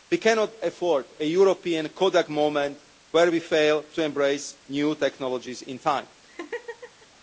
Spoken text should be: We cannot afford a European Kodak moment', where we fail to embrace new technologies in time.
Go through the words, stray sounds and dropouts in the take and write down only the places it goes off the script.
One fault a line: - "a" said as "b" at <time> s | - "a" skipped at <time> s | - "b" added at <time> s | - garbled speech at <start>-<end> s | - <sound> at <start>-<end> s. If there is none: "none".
- laugh at 6.2-7.1 s